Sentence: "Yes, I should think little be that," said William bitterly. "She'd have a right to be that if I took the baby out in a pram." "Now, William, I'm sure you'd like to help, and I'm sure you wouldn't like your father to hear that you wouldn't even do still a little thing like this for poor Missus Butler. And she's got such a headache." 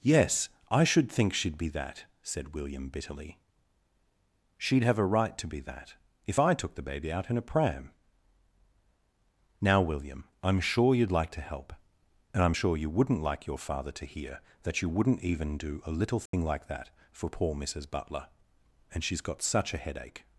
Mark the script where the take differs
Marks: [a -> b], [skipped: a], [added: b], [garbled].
"Yes, I should think [little -> she'd] be that," said William bitterly. "She'd have a right to be that if I took the baby out in a pram." "Now, William, I'm sure you'd like to help, and I'm sure you wouldn't like your father to hear that you wouldn't even do [skipped: still] a little thing like [this -> that] for poor Missus Butler. And she's got such a headache."